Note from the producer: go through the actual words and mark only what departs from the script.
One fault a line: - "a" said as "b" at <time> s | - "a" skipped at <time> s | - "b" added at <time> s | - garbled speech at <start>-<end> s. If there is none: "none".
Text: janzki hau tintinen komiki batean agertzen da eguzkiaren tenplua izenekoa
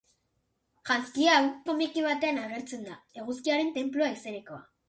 - "tintinen" skipped at 1.4 s